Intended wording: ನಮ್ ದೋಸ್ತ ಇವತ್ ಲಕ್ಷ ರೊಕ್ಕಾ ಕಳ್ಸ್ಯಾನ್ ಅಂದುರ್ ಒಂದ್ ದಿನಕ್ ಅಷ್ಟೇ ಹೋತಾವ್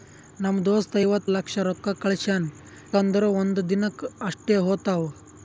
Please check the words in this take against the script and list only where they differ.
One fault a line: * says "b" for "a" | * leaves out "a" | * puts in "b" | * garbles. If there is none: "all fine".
all fine